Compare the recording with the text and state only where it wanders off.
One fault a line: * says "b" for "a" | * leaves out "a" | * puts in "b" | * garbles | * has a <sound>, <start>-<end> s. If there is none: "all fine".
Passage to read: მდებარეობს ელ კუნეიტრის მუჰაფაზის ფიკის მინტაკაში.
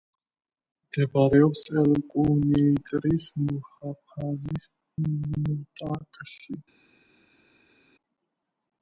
* leaves out "ფიკის"